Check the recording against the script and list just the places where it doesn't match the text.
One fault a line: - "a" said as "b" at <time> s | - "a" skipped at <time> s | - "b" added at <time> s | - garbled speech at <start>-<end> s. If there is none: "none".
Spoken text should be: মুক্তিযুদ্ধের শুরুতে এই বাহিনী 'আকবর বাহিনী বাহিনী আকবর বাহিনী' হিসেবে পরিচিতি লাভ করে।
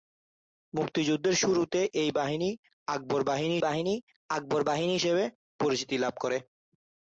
none